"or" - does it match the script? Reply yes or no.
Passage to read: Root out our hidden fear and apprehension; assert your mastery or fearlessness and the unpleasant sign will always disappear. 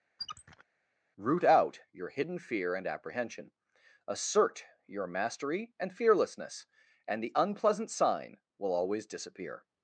no